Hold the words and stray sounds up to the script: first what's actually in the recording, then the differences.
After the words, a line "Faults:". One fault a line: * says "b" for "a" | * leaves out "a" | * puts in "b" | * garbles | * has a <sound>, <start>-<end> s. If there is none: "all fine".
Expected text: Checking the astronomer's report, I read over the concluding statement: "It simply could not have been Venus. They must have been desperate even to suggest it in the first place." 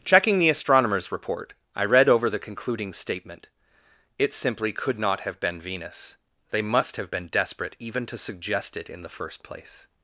Checking the astronomer's report, I read over the concluding statement: "It simply could not have been Venus. They must have been desperate even to suggest it in the first place."
Faults:
all fine